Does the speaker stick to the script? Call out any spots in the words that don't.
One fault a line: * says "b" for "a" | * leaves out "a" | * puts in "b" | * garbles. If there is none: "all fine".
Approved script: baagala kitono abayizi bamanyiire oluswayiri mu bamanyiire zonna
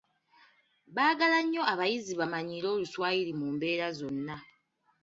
* says "nnyo" for "kitono"
* says "mbeera" for "bamanyiire"